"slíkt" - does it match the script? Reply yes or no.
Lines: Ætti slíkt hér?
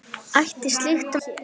yes